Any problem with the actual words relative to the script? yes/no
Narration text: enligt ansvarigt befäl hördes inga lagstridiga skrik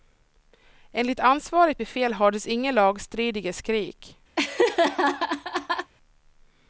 no